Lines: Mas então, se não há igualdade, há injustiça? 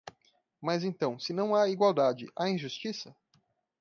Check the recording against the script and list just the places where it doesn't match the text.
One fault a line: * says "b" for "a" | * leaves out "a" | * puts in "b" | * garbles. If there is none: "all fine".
all fine